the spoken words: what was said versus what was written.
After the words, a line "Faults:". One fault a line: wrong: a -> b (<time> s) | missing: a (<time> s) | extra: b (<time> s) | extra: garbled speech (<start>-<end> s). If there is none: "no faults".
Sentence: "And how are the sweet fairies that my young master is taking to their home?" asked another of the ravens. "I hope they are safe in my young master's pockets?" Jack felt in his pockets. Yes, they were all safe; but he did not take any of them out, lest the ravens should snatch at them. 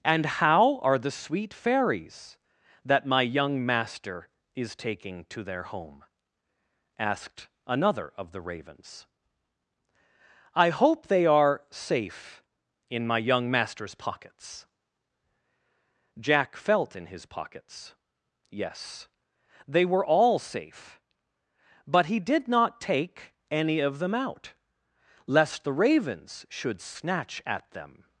"And how are the sweet fairies that my young master is taking to their home?" asked another of the ravens. "I hope they are safe in my young master's pockets?" Jack felt in his pockets. Yes, they were all safe; but he did not take any of them out, lest the ravens should snatch at them.
Faults:
no faults